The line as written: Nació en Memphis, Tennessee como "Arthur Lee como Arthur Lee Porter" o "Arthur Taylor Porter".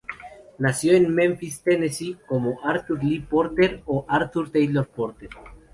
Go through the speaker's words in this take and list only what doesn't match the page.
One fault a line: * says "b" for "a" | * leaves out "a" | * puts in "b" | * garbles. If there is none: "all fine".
* leaves out "como Arthur Lee"